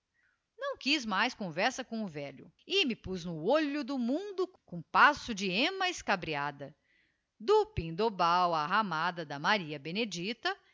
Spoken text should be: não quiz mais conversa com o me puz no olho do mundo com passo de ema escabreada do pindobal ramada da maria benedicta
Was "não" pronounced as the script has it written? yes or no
yes